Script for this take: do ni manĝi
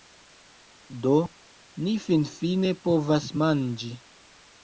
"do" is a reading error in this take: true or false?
false